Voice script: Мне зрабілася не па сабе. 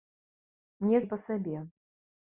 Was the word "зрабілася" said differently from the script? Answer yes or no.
yes